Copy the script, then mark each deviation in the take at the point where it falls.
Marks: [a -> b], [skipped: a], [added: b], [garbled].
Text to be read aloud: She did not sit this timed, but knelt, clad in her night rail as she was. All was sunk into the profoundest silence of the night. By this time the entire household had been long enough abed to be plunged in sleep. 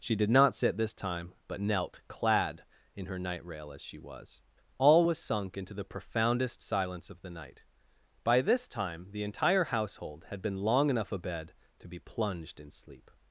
She did not sit this [timed, -> time] but knelt, clad in her night rail as she was. All was sunk into the profoundest silence of the night. By this time the entire household had been long enough abed to be plunged in sleep.